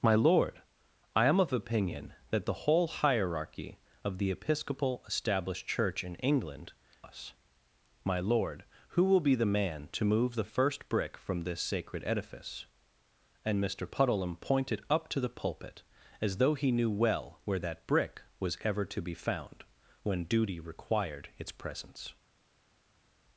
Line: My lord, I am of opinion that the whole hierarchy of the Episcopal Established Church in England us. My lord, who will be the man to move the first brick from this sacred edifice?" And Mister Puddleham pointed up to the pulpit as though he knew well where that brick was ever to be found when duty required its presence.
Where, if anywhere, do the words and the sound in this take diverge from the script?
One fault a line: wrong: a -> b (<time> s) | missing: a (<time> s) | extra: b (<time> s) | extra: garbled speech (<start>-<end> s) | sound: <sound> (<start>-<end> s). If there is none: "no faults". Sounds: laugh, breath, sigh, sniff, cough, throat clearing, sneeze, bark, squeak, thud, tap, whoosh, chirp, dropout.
no faults